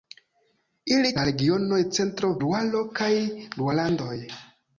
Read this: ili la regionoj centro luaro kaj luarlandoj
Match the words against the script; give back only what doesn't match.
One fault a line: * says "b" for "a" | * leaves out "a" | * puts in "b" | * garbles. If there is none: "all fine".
all fine